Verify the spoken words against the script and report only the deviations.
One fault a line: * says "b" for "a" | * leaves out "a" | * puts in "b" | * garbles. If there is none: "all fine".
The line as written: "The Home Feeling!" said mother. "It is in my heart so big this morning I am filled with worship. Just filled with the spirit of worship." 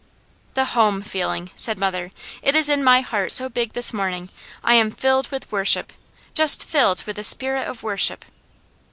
all fine